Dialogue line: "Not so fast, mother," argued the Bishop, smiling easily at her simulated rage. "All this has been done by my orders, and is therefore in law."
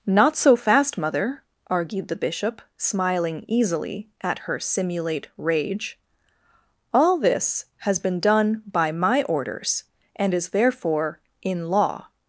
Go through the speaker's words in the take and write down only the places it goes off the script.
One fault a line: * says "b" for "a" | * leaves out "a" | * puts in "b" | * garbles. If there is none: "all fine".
* says "simulate" for "simulated"